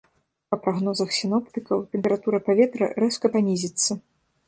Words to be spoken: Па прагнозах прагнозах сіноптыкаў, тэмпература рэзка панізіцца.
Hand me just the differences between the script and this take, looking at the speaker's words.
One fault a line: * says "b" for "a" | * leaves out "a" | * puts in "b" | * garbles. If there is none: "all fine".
* leaves out "прагнозах"
* puts in "паветра"